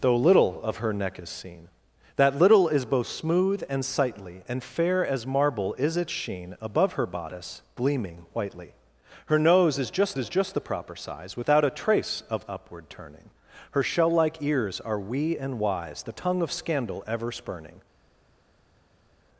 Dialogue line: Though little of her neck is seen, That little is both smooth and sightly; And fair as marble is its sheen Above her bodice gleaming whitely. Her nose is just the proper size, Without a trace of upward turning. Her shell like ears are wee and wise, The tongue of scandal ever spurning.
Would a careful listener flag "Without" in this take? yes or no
no